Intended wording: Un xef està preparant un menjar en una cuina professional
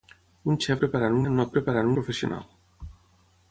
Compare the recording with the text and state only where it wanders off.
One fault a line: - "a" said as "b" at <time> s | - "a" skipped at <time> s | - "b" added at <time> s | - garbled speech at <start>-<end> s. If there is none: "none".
- "està" skipped at 0.8 s
- "menjar" skipped at 1.2 s
- "cuina" said as "preparant" at 1.6 s